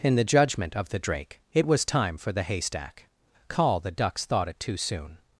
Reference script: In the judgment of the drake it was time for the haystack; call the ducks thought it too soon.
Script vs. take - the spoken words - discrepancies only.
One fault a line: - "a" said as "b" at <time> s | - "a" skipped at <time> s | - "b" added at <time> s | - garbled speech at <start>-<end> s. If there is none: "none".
none